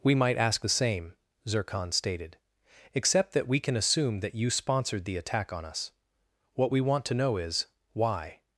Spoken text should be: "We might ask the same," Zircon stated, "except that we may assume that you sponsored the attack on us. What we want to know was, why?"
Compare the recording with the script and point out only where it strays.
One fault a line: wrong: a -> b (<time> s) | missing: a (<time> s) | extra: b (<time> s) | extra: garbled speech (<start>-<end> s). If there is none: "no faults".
wrong: may -> can (3.6 s)
wrong: was -> is (7.4 s)